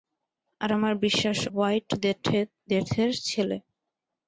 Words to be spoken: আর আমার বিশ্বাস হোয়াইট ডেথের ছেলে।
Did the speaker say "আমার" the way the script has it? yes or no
yes